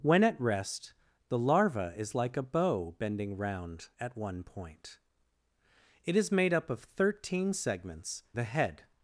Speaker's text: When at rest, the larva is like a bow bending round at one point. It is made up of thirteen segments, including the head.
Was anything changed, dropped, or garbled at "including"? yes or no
yes